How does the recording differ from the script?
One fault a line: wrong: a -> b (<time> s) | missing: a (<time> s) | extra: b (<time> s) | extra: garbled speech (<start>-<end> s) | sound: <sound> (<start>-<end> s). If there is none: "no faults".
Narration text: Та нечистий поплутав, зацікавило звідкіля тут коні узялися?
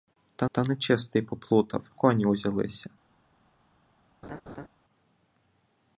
extra: та (0.5 s)
missing: зацікавило звідкіля тут (1.9 s)
sound: laugh (4.2-4.7 s)